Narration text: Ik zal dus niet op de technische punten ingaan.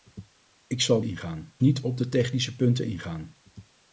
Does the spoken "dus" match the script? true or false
false